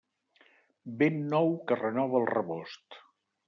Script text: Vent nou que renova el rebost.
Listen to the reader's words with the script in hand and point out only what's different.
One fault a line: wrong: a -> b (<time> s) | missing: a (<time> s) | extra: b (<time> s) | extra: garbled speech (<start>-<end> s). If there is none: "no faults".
no faults